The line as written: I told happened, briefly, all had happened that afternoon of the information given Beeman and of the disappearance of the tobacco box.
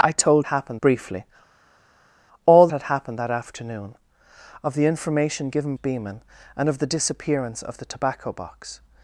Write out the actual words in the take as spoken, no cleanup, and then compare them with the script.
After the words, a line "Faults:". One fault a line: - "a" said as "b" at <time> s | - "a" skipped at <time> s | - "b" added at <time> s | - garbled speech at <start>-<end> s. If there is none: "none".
I told happened, briefly, all had happened that afternoon of the information given Beeman and of the disappearance of the tobacco box.
Faults:
none